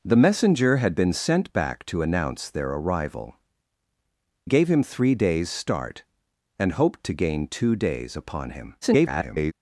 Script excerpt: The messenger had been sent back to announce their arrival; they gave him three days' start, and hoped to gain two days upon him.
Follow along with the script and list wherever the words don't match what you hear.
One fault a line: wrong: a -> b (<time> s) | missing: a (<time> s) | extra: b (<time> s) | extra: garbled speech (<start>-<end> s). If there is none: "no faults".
missing: they (3.4 s)
extra: garbled speech (8.8-9.5 s)